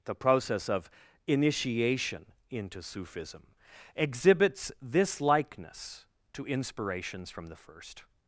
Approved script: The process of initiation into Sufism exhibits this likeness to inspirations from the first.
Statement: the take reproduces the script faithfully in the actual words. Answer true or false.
true